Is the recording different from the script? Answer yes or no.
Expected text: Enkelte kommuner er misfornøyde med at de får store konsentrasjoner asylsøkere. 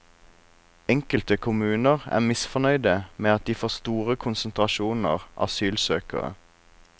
no